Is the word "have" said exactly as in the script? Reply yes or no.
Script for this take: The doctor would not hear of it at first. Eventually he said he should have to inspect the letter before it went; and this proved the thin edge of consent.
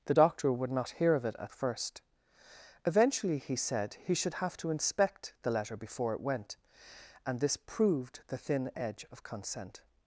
yes